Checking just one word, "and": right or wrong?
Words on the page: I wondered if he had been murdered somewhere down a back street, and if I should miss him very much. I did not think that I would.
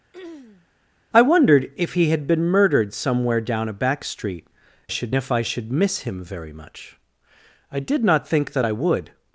wrong